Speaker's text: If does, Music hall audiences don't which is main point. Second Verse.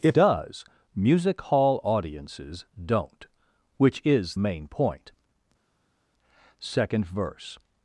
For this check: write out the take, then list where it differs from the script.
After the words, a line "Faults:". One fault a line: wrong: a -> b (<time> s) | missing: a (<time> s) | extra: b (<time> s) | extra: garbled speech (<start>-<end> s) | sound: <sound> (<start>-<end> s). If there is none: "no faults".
If does, Music hall audiences don't which is main point. Second Verse.
Faults:
no faults